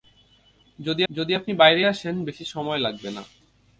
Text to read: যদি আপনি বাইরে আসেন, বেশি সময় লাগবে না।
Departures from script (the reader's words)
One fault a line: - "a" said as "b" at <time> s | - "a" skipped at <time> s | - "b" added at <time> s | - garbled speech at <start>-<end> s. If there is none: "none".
- "যদি" added at 1.1 s